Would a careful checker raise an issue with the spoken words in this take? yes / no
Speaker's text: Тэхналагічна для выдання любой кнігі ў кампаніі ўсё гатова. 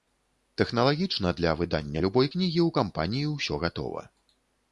no